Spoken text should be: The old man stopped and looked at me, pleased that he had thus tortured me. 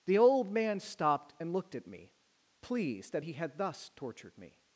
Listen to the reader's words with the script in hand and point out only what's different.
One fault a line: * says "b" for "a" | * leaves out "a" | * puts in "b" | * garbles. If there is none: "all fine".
all fine